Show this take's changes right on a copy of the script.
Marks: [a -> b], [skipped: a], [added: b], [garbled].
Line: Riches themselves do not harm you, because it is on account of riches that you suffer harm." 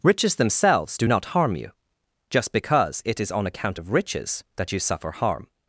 Riches themselves do not harm you, [added: just] because it is on account of riches that you suffer harm."